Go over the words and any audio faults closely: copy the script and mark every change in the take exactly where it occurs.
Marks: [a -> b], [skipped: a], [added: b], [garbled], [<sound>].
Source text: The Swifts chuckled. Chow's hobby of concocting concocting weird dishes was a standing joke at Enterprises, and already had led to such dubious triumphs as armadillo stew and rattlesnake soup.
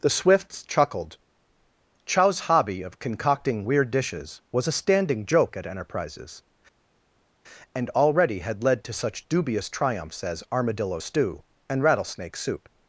The Swifts chuckled. Chow's hobby of concocting [skipped: concocting] weird dishes was a standing joke at Enterprises, and already had led to such dubious triumphs as armadillo stew and rattlesnake soup.